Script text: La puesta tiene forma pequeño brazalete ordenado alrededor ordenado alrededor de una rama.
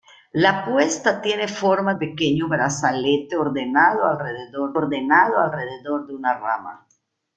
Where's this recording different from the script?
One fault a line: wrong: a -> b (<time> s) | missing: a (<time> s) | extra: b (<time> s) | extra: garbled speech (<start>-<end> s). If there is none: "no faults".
no faults